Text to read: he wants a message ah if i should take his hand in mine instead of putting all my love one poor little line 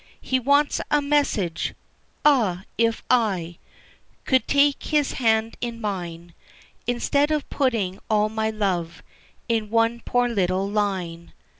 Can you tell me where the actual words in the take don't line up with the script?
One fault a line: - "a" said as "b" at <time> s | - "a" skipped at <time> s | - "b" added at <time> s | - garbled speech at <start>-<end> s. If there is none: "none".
- "should" said as "could" at 4.2 s
- "in" added at 9.5 s